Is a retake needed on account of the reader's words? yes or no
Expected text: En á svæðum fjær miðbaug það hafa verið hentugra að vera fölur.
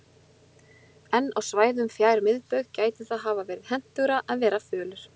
yes